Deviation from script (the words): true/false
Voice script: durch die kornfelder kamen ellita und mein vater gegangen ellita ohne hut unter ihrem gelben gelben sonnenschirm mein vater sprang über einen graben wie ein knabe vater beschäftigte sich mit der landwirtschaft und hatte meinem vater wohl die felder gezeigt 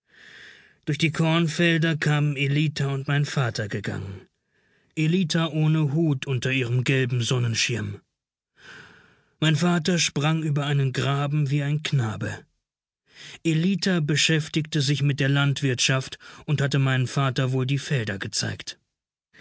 true